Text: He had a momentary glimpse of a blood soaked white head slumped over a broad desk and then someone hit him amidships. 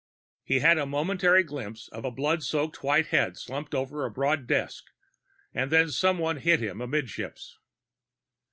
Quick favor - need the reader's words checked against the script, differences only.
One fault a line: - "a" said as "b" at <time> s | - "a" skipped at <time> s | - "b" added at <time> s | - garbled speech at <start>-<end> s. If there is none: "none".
none